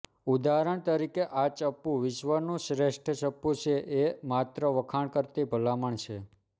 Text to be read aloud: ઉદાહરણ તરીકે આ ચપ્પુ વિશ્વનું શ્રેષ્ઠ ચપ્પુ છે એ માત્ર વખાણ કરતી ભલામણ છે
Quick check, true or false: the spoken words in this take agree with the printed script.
true